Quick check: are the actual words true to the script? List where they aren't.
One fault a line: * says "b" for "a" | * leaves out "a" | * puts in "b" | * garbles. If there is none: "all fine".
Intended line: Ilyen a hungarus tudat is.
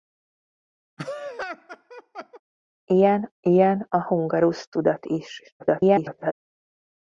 * puts in "ilyen"
* garbles